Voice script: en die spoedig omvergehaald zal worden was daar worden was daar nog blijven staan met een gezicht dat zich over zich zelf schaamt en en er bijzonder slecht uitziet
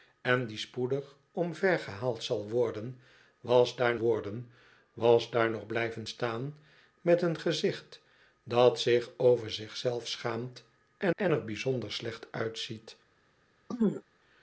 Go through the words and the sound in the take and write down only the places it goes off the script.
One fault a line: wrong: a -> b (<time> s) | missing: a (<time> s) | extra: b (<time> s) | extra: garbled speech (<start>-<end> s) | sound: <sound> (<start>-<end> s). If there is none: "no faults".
sound: throat clearing (13.7-14.0 s)